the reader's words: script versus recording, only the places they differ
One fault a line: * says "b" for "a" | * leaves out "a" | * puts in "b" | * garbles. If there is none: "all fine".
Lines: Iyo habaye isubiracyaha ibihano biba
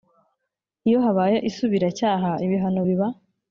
all fine